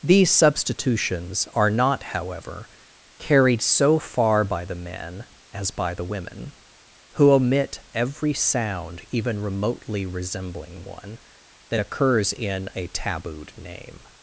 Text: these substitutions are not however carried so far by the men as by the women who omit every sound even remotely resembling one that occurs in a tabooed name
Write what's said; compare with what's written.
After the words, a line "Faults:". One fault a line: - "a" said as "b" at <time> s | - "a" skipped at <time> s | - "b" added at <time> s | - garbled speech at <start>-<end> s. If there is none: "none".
these substitutions are not however carried so far by the men as by the women who omit every sound even remotely resembling one that occurs in a tabooed name
Faults:
none